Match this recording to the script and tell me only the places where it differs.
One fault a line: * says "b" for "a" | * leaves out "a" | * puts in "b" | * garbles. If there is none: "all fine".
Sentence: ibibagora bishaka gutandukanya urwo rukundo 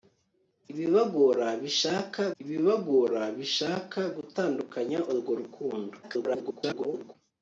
* puts in "ibibagora bishaka"
* garbles